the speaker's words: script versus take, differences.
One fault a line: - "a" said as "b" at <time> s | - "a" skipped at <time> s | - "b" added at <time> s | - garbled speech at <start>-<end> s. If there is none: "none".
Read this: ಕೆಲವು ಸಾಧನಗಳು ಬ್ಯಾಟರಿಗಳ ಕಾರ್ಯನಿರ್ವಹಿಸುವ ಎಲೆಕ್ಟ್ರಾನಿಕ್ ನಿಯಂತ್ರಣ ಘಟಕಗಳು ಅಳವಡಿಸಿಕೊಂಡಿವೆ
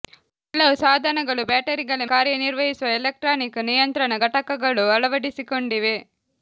none